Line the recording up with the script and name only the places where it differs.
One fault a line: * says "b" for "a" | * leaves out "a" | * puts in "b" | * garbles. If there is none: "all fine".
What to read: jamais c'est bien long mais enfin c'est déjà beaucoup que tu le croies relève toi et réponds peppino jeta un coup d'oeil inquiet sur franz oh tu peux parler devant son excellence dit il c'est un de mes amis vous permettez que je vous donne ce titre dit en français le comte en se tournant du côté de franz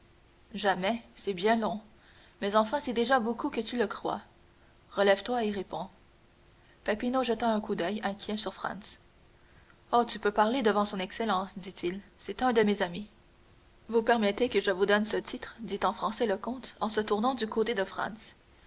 all fine